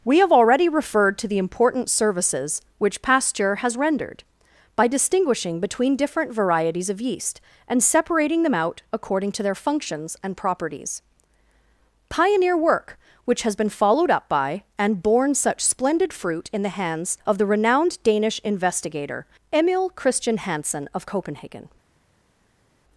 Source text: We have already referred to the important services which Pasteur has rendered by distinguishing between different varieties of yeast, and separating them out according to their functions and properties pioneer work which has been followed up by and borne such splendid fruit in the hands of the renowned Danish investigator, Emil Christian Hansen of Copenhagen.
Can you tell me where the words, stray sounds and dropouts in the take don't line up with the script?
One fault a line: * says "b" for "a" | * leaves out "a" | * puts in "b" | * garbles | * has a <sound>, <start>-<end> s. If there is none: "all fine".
all fine